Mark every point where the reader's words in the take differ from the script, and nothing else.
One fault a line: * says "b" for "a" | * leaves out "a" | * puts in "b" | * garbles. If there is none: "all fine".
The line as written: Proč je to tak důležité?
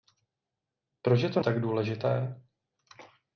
all fine